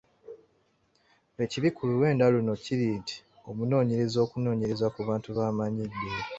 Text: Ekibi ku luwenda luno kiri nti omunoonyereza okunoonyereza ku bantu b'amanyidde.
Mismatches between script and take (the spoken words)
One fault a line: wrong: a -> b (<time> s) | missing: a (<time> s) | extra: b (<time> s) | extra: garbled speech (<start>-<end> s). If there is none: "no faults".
no faults